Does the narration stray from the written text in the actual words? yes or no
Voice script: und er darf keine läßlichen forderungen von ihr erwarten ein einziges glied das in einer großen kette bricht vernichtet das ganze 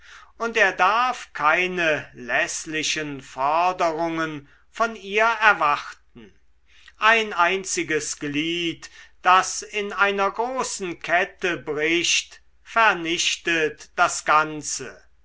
no